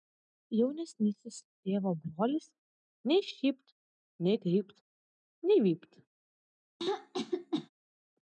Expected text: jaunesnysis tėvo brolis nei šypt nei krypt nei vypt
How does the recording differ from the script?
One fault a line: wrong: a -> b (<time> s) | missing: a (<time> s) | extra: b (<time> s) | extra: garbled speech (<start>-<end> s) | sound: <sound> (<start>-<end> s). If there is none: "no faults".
sound: throat clearing (6.8-7.7 s)